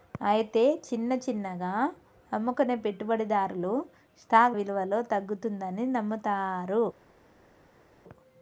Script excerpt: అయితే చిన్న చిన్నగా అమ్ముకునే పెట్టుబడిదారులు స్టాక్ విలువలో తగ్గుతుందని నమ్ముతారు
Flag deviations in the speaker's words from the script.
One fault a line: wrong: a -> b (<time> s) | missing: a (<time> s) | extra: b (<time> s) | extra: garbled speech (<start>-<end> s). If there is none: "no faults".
no faults